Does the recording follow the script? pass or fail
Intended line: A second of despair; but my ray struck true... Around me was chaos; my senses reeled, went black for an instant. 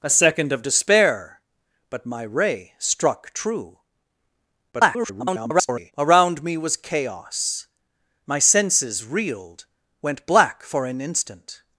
fail